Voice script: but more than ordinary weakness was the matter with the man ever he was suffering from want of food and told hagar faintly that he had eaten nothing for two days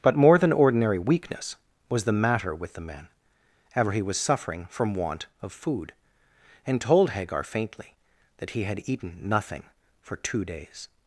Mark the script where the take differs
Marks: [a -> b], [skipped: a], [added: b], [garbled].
but more than ordinary weakness was the matter with the man ever he was suffering from want of food and told hagar faintly that he had eaten nothing for two days